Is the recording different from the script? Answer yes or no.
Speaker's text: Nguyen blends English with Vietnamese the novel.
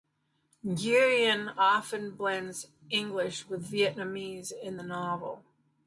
yes